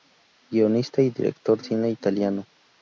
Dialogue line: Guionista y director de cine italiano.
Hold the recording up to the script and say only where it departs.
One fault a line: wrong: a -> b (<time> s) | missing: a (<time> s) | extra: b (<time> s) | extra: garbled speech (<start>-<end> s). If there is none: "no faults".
missing: de (1.6 s)